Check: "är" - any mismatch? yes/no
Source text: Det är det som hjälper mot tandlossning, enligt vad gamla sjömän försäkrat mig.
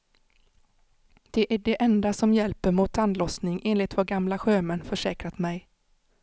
no